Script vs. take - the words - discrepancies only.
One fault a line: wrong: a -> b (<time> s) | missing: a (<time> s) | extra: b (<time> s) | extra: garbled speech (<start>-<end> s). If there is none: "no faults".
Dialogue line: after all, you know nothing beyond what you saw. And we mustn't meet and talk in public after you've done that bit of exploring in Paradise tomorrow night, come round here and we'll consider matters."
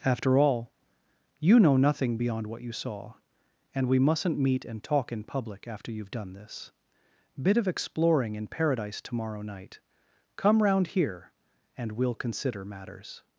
wrong: that -> this (6.3 s)